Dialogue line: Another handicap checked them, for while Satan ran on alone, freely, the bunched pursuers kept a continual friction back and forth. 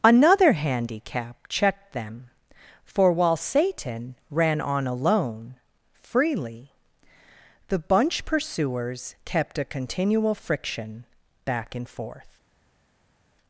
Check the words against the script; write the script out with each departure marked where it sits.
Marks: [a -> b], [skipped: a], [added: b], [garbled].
Another handicap checked them, for while Satan ran on alone, freely, the [bunched -> bunch] pursuers kept a continual friction back and forth.